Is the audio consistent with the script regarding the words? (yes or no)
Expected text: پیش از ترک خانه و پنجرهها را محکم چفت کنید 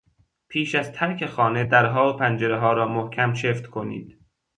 no